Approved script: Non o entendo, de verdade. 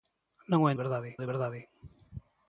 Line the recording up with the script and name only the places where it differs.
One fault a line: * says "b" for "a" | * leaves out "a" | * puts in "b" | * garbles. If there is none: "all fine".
* says "verdade" for "entendo"